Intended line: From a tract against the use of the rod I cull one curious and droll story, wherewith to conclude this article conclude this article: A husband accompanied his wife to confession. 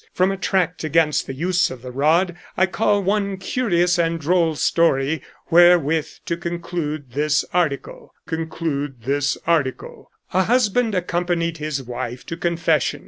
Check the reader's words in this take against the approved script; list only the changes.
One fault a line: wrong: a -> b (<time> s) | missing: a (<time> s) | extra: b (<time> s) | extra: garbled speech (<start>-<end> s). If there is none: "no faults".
no faults